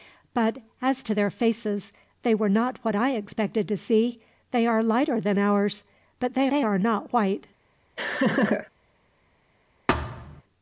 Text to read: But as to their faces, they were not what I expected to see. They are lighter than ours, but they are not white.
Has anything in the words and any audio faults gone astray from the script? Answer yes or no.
yes